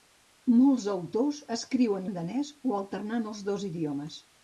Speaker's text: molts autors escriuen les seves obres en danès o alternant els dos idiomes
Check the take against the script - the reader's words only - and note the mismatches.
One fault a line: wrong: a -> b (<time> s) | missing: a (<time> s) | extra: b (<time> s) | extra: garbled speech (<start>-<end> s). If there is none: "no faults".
missing: les seves obres (2.1 s)